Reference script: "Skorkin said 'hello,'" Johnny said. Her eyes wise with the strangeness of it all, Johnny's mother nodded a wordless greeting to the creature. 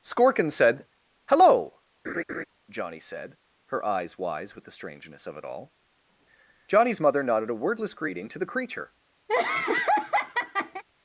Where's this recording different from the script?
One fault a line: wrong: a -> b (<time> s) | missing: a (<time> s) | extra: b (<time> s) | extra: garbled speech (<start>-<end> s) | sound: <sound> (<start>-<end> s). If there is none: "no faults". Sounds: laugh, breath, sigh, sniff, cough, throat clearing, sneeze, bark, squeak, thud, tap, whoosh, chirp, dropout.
sound: laugh (2.0-2.4 s)
sound: laugh (9.3-10.8 s)